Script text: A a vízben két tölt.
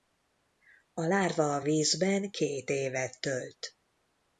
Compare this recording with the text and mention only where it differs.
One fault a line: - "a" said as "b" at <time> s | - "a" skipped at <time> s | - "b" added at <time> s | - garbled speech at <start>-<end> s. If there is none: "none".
- "lárva" added at 1.0 s
- "évet" added at 2.7 s